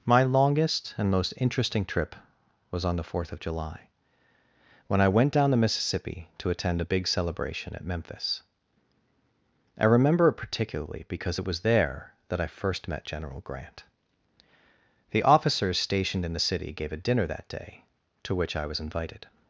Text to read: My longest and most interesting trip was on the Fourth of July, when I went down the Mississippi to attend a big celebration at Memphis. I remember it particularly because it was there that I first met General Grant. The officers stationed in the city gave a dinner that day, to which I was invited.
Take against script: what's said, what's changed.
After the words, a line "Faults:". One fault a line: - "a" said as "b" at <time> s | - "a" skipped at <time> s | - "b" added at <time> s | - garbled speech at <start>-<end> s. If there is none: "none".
My longest and most interesting trip was on the Fourth of July, when I went down the Mississippi to attend a big celebration at Memphis. I remember it particularly because it was there that I first met General Grant. The officers stationed in the city gave a dinner that day, to which I was invited.
Faults:
none